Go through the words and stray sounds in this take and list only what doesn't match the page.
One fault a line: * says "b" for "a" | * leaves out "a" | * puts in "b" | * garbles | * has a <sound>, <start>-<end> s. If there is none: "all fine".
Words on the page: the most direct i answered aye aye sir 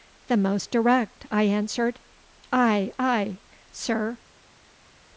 all fine